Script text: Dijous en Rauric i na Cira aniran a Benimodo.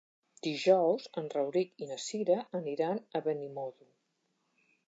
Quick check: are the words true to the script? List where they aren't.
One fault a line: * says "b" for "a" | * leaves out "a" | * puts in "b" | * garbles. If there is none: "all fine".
all fine